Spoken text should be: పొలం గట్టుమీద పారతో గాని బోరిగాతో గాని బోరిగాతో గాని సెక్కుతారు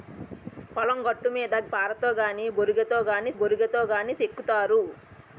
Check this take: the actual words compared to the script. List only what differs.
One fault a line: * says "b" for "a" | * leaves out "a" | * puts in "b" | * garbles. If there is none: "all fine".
all fine